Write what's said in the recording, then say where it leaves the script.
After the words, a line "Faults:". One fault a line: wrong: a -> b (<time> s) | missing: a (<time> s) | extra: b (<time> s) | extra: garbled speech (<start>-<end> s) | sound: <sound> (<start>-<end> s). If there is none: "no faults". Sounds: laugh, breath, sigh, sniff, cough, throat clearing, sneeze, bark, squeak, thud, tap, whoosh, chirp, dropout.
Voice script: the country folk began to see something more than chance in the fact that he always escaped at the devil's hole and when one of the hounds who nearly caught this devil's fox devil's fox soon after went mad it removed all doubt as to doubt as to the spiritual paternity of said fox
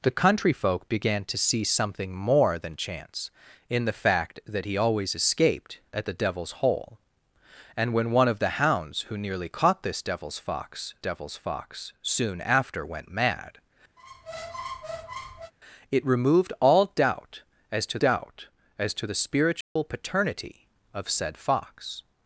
the country folk began to see something more than chance in the fact that he always escaped at the devil's hole and when one of the hounds who nearly caught this devil's fox devil's fox soon after went mad it removed all doubt as to doubt as to the spiritual paternity of said fox
Faults:
sound: squeak (14.0-15.5 s)
sound: dropout (19.6-19.8 s)